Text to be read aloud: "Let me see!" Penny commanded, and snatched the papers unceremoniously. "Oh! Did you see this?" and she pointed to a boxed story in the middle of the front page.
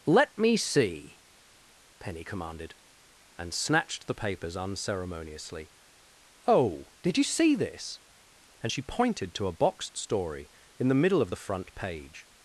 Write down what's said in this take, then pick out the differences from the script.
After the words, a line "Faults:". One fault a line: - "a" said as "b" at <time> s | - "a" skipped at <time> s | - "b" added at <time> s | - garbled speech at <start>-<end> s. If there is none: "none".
"Let me see!" Penny commanded, and snatched the papers unceremoniously. "Oh! Did you see this?" and she pointed to a boxed story in the middle of the front page.
Faults:
none